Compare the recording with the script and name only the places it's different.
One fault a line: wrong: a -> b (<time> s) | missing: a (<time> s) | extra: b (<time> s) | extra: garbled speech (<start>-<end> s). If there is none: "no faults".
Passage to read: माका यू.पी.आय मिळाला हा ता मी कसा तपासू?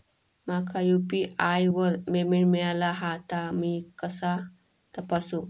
extra: वर पेमेंट (1.7 s)